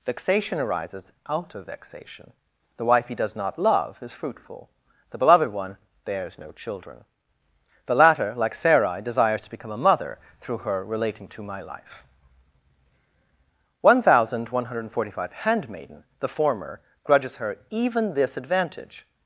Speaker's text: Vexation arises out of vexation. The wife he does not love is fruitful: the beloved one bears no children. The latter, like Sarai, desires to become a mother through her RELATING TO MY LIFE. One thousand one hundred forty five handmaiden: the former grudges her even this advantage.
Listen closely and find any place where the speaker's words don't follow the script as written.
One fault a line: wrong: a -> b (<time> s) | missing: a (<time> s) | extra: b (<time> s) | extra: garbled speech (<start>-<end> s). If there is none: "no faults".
no faults